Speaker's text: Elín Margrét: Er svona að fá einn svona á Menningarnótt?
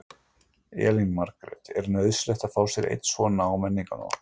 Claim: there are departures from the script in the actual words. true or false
true